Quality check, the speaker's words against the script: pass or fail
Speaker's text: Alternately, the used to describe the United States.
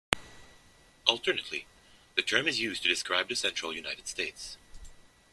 fail